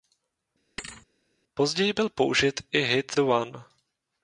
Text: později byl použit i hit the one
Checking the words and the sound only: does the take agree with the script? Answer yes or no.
no